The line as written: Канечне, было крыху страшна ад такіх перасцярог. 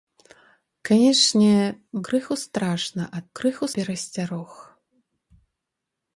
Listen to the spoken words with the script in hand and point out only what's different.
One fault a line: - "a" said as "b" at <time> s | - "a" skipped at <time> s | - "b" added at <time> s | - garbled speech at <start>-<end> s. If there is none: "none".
- "было" skipped at 1.6 s
- "такіх" said as "крыху" at 3.4 s